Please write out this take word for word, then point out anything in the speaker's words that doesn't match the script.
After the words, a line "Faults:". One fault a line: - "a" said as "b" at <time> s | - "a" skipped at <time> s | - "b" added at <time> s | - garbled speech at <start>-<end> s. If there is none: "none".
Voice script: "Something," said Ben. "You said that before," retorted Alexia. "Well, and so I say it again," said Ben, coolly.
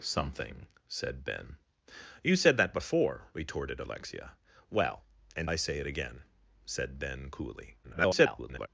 "Something," said Ben. "You said that before," retorted Alexia. "Well, and I say it again," said Ben, coolly. [garbled]
Faults:
- "so" skipped at 5.5 s
- garbled speech at 7.8-8.7 s